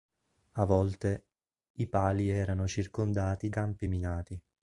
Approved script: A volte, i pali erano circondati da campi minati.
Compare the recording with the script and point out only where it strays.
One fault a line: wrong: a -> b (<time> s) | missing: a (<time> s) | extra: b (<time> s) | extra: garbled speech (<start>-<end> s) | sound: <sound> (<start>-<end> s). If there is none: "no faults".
missing: da (3.5 s)